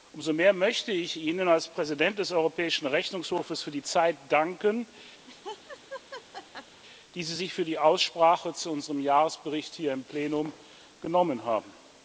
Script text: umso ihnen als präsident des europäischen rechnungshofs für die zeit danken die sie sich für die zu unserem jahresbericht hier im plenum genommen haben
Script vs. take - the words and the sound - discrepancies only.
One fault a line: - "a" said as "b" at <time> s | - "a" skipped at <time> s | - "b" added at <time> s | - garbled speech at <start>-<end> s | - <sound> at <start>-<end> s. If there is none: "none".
- "mehr möchte ich" added at 0.3 s
- laugh at 5.3-6.8 s
- "aussprache" added at 7.8 s